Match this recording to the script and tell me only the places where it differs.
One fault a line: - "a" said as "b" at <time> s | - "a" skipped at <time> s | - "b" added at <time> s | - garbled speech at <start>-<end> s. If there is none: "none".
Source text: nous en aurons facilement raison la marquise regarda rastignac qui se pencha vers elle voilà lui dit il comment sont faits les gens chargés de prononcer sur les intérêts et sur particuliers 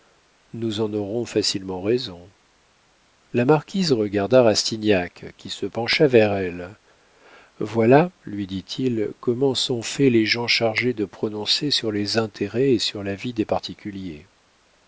- "la vie des" added at 13.0 s